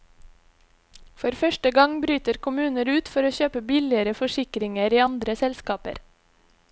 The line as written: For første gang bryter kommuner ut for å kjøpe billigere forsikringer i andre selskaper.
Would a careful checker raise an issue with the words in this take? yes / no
no